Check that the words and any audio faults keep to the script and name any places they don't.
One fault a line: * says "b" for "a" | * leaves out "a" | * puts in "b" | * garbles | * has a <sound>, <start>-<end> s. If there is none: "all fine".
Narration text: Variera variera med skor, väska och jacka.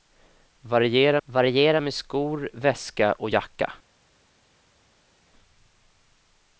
all fine